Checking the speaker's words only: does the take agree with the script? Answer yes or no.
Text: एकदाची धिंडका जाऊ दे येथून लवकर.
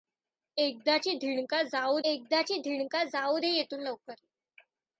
no